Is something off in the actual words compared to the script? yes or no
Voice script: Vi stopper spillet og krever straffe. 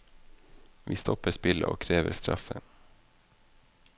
no